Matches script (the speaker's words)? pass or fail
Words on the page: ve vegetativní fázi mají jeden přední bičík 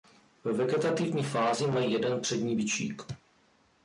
pass